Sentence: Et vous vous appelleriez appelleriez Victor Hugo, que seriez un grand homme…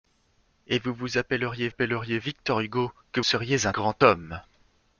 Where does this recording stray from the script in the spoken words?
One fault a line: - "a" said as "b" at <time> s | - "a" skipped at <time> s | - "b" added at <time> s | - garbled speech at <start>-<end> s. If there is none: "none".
none